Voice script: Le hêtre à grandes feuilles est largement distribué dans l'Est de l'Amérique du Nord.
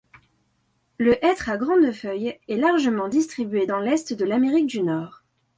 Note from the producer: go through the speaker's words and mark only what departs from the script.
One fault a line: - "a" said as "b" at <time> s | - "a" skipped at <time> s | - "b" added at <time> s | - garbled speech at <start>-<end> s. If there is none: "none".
none